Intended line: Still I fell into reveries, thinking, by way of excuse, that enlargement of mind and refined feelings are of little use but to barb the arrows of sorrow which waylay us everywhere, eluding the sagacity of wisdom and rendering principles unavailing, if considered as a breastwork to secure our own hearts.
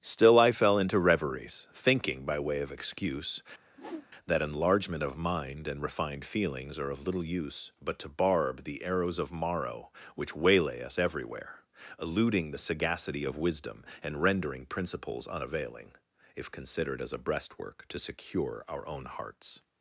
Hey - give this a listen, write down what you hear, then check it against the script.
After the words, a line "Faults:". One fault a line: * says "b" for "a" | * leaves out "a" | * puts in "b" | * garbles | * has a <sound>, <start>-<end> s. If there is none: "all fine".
Still I fell into reveries, thinking, by way of excuse, that enlargement of mind and refined feelings are of little use but to barb the arrows of morrow which waylay us everywhere, eluding the sagacity of wisdom and rendering principles unavailing, if considered as a breastwork to secure our own hearts.
Faults:
* has a whoosh, 3.7-4.1 s
* says "morrow" for "sorrow"